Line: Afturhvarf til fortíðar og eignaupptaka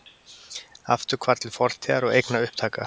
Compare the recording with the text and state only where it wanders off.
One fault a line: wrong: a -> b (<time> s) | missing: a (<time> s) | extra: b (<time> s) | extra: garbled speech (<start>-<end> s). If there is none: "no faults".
no faults